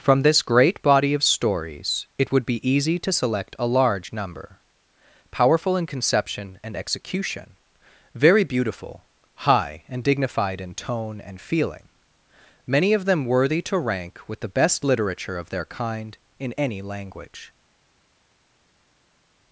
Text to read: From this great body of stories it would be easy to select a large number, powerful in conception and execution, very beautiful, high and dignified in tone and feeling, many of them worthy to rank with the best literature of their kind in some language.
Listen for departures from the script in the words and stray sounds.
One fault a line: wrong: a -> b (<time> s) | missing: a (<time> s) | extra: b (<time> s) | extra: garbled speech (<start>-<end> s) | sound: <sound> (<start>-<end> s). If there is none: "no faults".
wrong: some -> any (16.5 s)